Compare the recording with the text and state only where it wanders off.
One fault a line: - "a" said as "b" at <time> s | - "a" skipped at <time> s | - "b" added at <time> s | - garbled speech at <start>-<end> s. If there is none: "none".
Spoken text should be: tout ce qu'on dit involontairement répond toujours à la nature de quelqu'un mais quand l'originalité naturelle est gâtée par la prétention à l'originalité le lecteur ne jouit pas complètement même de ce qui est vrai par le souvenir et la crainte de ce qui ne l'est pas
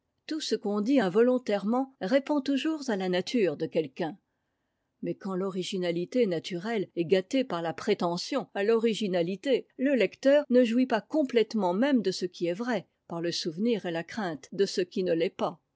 none